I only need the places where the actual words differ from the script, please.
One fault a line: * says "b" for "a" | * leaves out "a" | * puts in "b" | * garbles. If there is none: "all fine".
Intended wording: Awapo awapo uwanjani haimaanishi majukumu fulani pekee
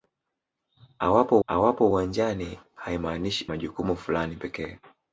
all fine